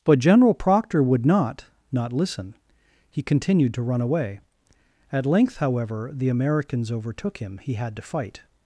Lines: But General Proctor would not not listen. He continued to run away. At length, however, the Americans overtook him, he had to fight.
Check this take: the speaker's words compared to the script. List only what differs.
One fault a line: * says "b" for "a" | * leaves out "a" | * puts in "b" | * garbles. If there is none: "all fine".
all fine